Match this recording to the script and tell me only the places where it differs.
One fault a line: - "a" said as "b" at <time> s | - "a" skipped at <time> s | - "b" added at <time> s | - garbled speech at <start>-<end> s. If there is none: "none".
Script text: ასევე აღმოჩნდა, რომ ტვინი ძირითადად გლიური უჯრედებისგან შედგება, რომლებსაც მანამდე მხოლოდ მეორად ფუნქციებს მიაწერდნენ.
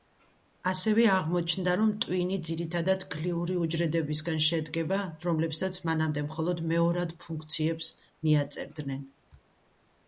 none